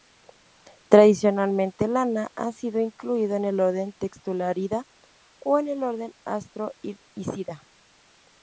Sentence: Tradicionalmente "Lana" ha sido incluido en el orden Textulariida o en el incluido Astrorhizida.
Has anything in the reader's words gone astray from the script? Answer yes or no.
yes